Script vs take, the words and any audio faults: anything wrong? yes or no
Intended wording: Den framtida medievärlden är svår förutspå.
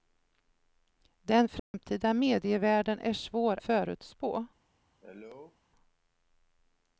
yes